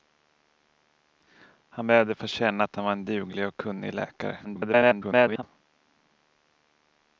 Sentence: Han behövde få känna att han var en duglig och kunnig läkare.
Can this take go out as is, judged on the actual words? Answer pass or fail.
fail